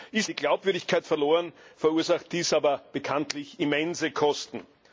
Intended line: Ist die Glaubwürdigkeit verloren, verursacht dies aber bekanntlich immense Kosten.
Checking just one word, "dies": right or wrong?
right